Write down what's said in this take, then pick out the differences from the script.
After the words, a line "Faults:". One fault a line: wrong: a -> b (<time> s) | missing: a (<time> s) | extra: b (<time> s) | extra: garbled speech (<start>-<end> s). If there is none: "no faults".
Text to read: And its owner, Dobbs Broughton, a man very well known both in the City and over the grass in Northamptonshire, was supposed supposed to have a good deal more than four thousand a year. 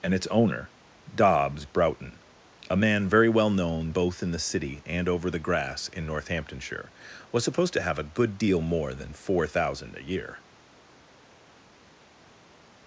And its owner, Dobbs Broughton, a man very well known both in the City and over the grass in Northamptonshire, was supposed to have a good deal more than four thousand a year.
Faults:
missing: supposed (7.7 s)